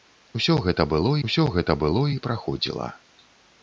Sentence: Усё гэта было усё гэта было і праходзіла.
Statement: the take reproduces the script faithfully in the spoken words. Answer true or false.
true